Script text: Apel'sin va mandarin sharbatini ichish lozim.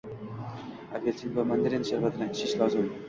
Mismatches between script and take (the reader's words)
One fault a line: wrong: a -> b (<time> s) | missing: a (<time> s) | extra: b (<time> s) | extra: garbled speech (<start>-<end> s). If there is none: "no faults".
no faults